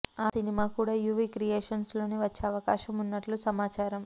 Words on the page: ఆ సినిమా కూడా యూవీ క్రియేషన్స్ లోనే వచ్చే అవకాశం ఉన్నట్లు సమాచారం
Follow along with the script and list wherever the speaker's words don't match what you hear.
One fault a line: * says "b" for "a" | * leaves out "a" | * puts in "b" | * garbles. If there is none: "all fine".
all fine